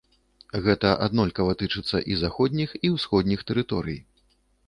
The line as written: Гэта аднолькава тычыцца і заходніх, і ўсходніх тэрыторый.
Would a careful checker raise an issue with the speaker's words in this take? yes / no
no